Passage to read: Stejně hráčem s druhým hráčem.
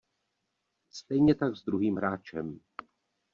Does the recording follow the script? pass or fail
fail